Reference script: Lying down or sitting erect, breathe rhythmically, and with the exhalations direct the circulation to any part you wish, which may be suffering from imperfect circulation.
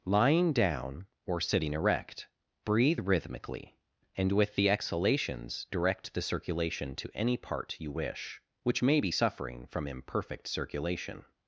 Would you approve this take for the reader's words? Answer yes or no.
yes